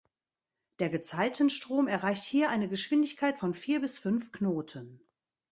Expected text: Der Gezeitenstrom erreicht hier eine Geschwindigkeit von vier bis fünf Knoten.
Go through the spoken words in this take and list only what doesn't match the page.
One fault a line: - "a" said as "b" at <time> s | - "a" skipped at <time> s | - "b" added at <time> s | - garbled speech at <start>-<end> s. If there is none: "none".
none